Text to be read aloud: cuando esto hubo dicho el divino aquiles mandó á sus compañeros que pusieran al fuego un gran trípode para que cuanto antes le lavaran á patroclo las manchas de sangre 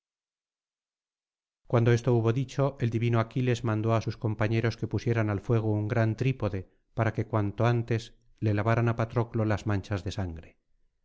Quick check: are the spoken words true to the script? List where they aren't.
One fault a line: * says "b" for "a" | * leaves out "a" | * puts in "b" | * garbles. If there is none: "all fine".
all fine